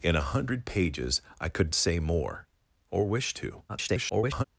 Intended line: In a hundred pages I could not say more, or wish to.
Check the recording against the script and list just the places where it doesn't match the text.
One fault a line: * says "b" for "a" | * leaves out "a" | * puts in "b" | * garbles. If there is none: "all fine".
* leaves out "not"
* garbles